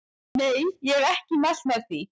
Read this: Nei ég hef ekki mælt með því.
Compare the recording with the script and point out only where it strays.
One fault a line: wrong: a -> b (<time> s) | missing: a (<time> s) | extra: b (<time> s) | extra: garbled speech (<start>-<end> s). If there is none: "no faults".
no faults